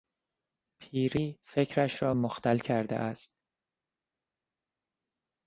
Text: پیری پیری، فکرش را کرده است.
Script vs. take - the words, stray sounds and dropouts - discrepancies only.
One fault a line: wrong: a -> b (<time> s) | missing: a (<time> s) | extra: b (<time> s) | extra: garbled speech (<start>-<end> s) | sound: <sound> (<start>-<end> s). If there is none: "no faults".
missing: پیری (1.4 s)
extra: مختل (2.1 s)